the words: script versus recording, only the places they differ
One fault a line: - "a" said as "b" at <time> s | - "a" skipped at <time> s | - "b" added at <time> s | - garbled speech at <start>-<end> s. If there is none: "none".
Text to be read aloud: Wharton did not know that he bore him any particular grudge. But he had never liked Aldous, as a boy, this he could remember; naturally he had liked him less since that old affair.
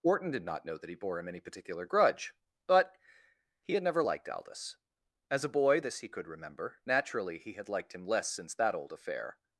none